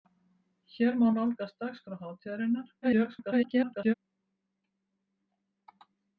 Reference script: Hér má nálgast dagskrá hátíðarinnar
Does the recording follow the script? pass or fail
fail